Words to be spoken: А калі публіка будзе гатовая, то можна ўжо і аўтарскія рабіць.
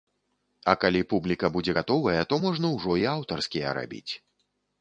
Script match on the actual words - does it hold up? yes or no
yes